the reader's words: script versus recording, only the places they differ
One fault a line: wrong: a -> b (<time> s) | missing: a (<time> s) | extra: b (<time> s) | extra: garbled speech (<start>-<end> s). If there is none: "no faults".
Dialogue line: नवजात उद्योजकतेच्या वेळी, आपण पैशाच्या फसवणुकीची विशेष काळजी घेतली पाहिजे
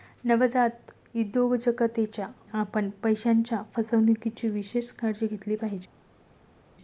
missing: वेळी (2.3 s)